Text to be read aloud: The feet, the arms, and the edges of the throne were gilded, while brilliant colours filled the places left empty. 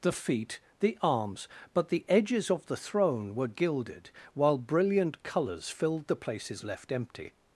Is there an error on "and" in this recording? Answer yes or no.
yes